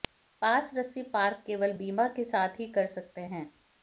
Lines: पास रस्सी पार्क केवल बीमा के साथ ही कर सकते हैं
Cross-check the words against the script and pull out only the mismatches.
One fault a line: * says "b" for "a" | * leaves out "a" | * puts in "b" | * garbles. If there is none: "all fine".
all fine